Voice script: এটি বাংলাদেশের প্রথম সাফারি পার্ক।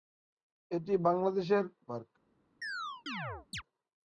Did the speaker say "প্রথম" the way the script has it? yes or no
no